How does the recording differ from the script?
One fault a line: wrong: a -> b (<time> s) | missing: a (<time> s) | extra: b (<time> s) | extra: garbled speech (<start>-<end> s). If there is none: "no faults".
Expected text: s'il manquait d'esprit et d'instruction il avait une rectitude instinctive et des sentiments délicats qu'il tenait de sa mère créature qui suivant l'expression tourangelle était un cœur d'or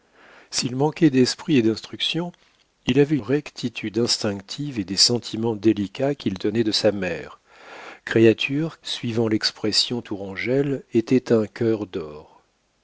missing: une (3.2 s)
missing: qui (8.8 s)